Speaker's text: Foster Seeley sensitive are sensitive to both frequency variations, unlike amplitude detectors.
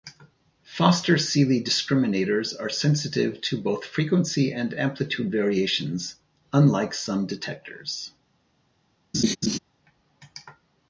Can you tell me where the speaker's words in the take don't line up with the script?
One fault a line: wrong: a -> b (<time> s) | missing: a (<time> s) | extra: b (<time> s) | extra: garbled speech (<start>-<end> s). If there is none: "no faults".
wrong: sensitive -> discriminators (1.6 s)
extra: and amplitude (4.5 s)
wrong: amplitude -> some (7.0 s)